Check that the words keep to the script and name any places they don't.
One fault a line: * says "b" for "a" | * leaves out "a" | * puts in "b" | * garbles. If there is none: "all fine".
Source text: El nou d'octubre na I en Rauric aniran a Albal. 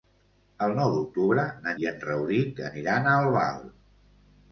all fine